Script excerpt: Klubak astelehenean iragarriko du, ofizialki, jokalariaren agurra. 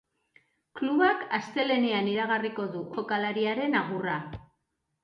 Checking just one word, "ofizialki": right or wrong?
wrong